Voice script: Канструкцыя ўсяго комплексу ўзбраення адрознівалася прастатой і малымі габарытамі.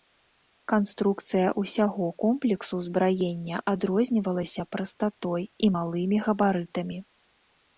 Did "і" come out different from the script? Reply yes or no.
no